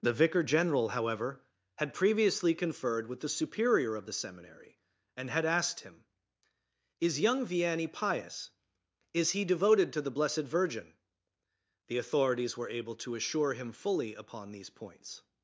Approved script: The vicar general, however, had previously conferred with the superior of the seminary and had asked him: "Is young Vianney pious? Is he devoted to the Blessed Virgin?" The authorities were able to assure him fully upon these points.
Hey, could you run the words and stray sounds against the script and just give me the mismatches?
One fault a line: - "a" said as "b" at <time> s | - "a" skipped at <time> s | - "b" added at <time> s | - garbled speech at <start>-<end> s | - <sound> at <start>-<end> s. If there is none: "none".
none